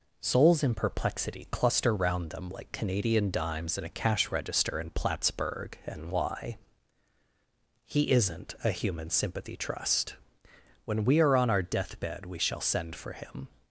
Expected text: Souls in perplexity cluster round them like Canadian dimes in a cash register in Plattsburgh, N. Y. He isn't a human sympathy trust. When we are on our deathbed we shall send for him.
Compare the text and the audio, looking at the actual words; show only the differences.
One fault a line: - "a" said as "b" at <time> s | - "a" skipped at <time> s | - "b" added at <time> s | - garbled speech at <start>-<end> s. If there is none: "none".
none